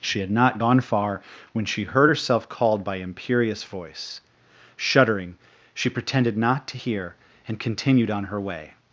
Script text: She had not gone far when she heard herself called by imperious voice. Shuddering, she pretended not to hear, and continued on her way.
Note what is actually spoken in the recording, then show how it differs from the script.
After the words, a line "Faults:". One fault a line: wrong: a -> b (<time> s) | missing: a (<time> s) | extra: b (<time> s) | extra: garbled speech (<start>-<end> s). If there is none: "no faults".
She had not gone far when she heard herself called by imperious voice. Shuddering, she pretended not to hear, and continued on her way.
Faults:
no faults